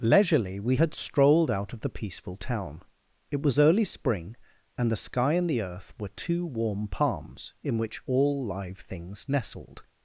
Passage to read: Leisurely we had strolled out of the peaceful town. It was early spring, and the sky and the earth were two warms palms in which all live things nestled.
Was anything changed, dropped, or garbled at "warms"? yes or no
yes